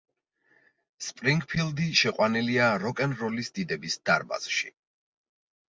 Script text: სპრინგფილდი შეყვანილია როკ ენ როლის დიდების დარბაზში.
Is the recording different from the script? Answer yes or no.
no